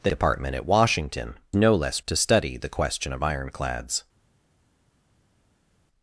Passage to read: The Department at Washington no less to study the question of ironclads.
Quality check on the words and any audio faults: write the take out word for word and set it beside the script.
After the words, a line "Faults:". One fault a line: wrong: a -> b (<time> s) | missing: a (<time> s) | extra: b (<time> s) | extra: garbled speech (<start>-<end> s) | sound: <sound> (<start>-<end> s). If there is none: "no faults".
The Department at Washington no less to study the question of ironclads.
Faults:
no faults